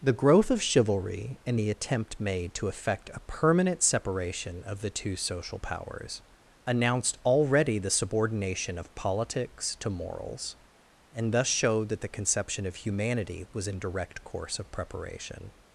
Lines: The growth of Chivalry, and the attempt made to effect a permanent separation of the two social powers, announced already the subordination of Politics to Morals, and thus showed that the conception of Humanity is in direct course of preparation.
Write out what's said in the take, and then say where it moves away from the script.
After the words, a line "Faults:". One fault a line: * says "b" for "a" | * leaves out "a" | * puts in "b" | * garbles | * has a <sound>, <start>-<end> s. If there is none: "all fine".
The growth of Chivalry, and the attempt made to effect a permanent separation of the two social powers, announced already the subordination of Politics to Morals, and thus showed that the conception of Humanity was in direct course of preparation.
Faults:
* says "was" for "is"